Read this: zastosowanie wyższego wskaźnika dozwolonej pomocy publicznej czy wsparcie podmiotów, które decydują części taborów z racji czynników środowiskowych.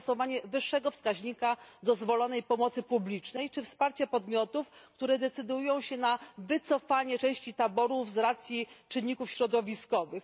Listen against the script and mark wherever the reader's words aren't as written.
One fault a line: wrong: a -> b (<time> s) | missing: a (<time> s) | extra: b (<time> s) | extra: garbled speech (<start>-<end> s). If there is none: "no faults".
extra: się na wycofanie (5.8 s)